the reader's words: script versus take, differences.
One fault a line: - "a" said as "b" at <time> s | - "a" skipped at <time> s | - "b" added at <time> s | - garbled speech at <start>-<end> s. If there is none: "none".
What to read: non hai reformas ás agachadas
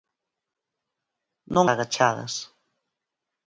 - "hai reformas ás" skipped at 1.7 s